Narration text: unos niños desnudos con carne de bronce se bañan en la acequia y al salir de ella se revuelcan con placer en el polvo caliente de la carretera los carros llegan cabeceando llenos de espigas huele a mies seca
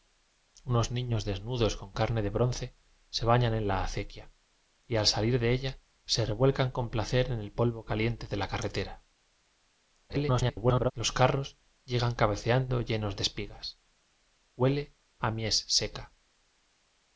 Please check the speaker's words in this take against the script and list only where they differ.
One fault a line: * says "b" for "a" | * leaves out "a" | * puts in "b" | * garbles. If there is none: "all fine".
* garbles